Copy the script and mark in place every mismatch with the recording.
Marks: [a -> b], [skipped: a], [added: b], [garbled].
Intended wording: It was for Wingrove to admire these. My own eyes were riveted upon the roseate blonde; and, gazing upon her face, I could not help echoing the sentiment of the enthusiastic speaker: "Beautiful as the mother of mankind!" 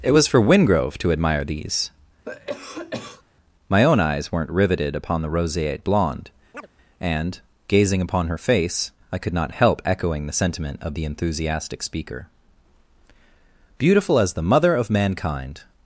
It was for Wingrove to admire these. My own eyes [were -> weren't] riveted upon the roseate blonde; and, gazing upon her face, I could not help echoing the sentiment of the enthusiastic speaker: "Beautiful as the mother of mankind!"